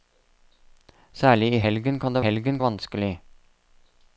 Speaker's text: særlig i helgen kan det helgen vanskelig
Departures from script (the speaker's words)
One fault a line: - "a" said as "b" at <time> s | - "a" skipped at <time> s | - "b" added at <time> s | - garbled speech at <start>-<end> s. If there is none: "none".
none